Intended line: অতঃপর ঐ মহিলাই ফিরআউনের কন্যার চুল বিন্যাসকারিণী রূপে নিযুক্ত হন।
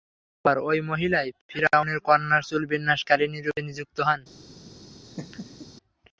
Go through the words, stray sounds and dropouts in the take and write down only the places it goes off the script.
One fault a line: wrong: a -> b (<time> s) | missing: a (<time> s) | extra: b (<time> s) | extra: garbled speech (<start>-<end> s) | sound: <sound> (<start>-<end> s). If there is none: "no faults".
sound: laugh (5.1-5.7 s)